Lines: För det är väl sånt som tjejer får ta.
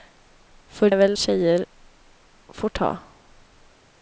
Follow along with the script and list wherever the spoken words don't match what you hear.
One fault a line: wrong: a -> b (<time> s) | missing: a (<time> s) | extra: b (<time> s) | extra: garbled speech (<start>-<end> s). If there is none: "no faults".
missing: det (0.9 s)
missing: sånt som (1.2 s)